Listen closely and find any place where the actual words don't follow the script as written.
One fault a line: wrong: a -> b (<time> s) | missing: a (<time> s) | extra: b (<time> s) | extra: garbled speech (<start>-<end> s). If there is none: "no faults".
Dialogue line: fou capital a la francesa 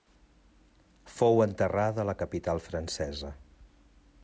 wrong: capital -> enterrada (1.4 s)
extra: capital (2.2 s)